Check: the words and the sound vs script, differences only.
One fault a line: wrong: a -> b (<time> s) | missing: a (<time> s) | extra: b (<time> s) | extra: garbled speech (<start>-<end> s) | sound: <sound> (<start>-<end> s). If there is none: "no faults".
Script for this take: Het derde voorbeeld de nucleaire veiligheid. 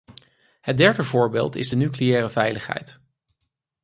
extra: is (1.6 s)